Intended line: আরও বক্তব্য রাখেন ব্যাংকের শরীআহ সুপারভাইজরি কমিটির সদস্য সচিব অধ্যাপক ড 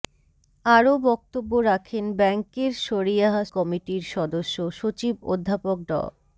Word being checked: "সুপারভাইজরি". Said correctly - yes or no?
no